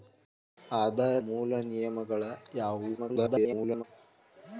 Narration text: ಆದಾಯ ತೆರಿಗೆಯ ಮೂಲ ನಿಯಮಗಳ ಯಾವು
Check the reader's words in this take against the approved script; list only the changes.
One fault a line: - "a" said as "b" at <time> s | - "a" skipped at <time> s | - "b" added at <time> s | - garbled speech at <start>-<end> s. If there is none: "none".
- "ತೆರಿಗೆಯ" skipped at 1.1 s
- garbled speech at 3.0-3.8 s